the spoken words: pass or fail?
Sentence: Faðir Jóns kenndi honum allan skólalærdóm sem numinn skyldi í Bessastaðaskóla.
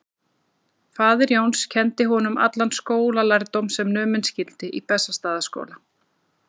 pass